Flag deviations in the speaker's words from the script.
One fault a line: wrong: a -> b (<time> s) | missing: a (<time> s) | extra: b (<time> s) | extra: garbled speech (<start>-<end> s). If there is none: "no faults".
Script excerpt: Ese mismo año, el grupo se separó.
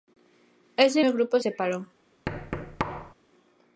missing: mismo año (1.1 s)
missing: se (1.4 s)